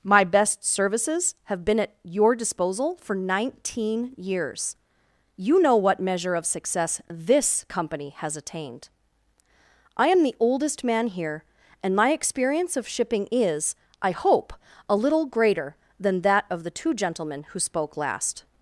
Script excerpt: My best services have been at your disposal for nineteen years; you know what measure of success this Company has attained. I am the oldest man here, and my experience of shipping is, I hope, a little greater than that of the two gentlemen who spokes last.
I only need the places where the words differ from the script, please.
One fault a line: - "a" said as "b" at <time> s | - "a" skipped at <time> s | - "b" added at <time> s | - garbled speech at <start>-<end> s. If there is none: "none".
- "spokes" said as "spoke" at 17.6 s